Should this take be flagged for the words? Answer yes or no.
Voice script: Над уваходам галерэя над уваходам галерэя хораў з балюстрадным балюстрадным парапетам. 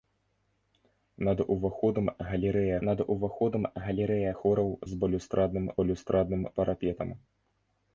no